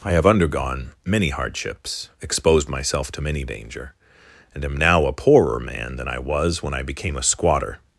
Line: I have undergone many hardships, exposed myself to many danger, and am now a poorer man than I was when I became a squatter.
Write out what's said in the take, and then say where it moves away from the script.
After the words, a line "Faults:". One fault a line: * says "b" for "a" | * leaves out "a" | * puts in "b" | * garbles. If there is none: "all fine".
I have undergone many hardships, exposed myself to many danger, and am now a poorer man than I was when I became a squatter.
Faults:
all fine